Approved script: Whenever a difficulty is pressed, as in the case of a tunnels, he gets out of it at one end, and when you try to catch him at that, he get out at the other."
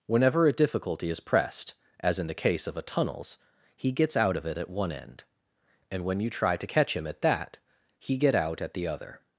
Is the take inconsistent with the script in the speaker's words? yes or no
no